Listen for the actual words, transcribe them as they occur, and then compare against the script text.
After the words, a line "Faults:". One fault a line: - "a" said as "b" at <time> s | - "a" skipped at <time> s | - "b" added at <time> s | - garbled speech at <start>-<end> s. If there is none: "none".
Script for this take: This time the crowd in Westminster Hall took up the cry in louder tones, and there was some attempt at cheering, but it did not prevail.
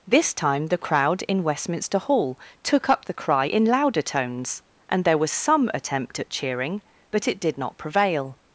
This time the crowd in Westminster Hall took up the cry in louder tones, and there was some attempt at cheering, but it did not prevail.
Faults:
none